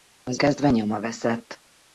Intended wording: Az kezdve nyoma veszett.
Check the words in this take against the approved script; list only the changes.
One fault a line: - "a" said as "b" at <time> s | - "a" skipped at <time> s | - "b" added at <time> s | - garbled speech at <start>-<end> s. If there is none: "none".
none